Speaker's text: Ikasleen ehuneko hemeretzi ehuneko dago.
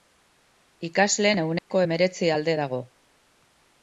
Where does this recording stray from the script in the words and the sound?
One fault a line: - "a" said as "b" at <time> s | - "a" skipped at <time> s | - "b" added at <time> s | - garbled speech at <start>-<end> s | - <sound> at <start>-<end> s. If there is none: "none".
- dropout at 1.6-1.7 s
- "ehuneko" said as "alde" at 2.4 s